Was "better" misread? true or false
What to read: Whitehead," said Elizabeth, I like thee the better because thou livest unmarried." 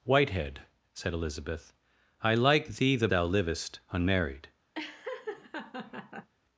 true